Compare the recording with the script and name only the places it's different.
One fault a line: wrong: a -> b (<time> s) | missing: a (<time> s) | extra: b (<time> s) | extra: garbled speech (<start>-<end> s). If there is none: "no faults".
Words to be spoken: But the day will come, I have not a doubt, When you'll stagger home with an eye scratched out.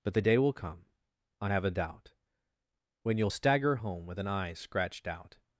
missing: not (1.6 s)